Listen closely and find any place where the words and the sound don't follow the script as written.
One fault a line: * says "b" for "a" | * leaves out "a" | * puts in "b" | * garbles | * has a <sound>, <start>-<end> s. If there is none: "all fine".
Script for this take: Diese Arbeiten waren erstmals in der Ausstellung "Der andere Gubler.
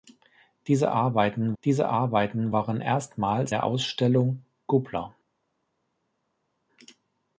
* puts in "diese Arbeiten"
* leaves out "in"
* leaves out "Der andere"